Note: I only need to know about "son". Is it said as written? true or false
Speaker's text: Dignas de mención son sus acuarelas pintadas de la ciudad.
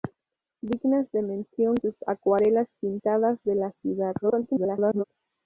false